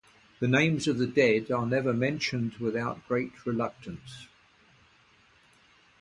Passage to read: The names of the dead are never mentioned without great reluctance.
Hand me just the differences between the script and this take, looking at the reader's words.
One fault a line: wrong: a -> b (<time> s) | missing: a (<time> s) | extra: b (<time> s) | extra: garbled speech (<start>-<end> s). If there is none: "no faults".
no faults